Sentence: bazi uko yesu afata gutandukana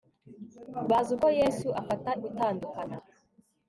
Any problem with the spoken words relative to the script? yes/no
no